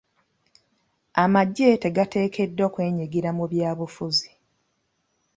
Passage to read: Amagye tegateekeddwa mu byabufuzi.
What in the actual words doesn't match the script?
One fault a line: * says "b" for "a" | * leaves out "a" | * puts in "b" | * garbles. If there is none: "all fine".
* puts in "kwenyigira"